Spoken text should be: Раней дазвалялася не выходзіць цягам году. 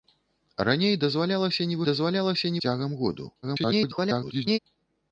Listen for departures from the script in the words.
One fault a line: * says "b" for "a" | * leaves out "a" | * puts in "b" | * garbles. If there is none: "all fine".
* says "дазвалялася" for "выходзіць"
* garbles